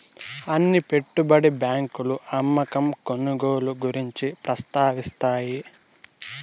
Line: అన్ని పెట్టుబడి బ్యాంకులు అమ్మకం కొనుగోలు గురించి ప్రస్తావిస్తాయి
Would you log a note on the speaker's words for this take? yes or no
no